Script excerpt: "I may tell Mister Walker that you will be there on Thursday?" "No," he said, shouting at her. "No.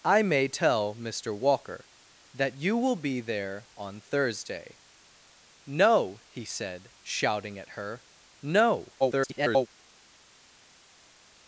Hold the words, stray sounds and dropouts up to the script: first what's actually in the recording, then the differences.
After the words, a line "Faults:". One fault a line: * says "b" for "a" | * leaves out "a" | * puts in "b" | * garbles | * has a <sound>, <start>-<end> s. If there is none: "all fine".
"I may tell Mister Walker that you will be there on Thursday?" "No," he said, shouting at her. "No. [garbled]
Faults:
* garbles